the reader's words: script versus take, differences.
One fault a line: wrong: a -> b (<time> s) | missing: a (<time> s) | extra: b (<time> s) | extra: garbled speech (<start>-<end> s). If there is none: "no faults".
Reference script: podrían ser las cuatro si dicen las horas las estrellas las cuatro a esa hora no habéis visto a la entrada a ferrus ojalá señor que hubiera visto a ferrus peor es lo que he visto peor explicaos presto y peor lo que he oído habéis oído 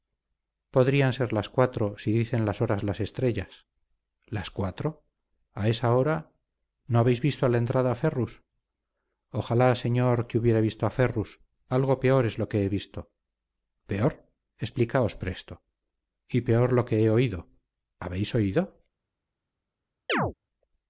extra: algo (11.7 s)